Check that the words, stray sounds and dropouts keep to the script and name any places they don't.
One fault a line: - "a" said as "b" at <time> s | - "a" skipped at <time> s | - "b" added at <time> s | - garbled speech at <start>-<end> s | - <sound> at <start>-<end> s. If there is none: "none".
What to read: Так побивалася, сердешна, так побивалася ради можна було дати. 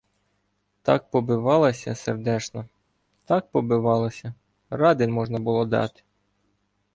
none